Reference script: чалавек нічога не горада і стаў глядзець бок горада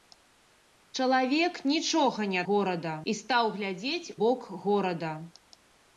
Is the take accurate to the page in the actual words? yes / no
yes